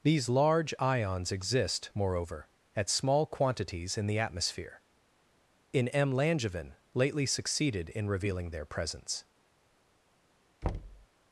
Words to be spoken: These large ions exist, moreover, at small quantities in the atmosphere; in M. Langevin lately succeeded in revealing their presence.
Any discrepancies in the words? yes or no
no